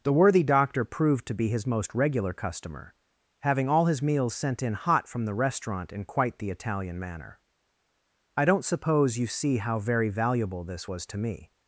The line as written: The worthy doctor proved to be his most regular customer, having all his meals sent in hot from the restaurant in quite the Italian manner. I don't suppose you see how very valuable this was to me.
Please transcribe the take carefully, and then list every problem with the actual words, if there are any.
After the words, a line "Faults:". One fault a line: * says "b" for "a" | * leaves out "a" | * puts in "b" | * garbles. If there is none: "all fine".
The worthy doctor proved to be his most regular customer, having all his meals sent in hot from the restaurant in quite the Italian manner. I don't suppose you see how very valuable this was to me.
Faults:
all fine